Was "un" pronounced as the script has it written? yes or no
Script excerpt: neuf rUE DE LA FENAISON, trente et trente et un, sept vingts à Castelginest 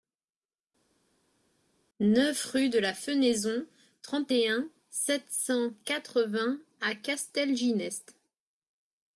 no